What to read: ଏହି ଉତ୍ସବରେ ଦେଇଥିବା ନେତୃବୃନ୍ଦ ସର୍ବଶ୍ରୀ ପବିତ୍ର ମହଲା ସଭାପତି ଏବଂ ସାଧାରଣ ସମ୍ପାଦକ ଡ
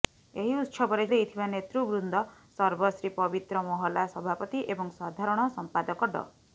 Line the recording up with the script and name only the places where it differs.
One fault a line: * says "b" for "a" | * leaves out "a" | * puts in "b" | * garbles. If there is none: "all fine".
all fine